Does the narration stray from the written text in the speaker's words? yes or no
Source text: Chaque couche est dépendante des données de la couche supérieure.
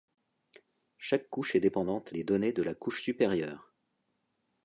no